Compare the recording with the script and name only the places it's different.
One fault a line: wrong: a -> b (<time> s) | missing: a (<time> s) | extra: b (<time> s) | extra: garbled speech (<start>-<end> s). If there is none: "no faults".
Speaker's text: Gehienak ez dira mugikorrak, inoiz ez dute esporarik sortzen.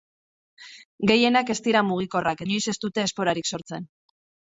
no faults